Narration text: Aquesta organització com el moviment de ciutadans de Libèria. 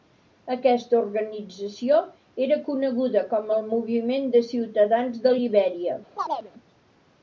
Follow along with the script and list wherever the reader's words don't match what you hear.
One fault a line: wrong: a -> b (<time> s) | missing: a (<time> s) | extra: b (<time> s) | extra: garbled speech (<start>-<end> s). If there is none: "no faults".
extra: era coneguda (2.5 s)